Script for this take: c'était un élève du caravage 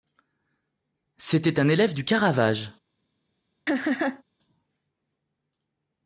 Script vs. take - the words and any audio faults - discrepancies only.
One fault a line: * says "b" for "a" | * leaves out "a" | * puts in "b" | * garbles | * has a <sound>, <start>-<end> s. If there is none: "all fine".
* has a laugh, 3.7-4.2 s